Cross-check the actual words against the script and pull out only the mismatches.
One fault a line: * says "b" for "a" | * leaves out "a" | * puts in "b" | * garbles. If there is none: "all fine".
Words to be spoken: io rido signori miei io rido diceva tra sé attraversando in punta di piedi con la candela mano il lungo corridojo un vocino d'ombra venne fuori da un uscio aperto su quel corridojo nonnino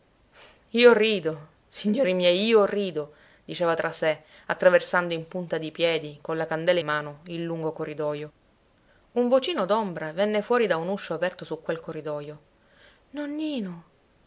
all fine